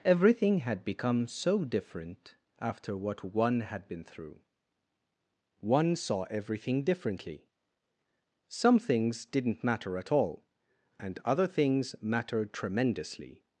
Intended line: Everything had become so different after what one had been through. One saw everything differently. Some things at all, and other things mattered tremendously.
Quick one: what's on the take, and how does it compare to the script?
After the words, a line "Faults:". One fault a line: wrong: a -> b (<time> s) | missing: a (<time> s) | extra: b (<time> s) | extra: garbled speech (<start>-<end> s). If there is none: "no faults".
Everything had become so different after what one had been through. One saw everything differently. Some things didn't matter at all, and other things mattered tremendously.
Faults:
extra: didn't matter (9.2 s)